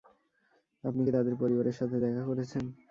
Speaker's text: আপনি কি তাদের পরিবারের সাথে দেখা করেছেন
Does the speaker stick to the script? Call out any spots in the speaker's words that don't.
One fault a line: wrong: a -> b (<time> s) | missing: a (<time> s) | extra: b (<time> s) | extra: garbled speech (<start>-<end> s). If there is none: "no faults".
no faults